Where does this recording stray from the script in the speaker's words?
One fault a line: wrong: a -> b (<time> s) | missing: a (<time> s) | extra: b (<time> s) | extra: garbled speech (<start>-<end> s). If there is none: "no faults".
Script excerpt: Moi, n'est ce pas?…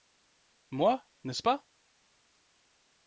no faults